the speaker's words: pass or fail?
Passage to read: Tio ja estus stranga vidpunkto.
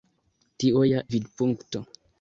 fail